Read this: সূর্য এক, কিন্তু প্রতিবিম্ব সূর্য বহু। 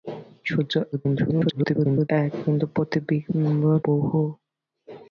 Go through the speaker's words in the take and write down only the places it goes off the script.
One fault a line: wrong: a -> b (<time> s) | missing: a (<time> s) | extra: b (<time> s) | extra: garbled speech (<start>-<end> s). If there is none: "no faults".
extra: garbled speech (0.9-2.1 s)
missing: সূর্য (3.6 s)